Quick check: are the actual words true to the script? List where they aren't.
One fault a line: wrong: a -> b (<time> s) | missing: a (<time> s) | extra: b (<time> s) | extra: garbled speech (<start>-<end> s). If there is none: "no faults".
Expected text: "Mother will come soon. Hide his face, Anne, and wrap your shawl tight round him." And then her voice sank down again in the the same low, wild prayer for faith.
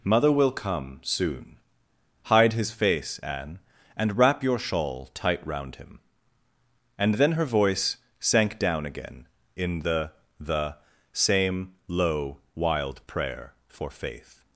no faults